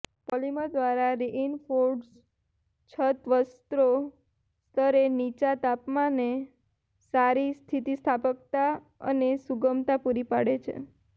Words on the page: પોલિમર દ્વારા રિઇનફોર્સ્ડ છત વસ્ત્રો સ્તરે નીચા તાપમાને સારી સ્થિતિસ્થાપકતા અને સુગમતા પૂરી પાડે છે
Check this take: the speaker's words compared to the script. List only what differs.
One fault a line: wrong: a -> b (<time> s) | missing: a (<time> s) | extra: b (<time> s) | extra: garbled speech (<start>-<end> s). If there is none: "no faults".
no faults